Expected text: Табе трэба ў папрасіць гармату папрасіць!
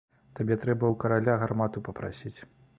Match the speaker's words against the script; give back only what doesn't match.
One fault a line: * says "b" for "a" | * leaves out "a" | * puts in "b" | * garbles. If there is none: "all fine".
* says "караля" for "папрасіць"